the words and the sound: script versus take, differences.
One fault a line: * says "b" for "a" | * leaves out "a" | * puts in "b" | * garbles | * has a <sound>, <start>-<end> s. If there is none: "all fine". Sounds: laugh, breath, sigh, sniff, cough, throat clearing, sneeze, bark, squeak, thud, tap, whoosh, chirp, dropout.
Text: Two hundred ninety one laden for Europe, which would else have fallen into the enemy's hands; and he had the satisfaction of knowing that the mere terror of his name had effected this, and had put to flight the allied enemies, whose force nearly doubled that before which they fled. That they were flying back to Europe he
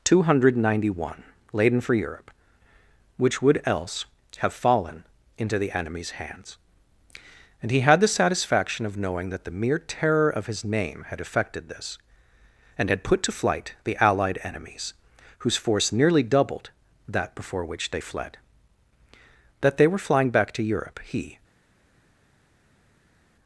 all fine